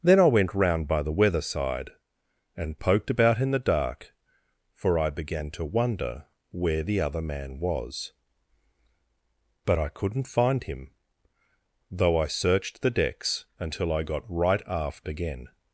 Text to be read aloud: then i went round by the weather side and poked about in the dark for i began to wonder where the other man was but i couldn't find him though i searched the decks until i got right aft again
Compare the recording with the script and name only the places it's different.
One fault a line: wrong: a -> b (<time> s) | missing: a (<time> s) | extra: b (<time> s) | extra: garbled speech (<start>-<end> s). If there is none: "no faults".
no faults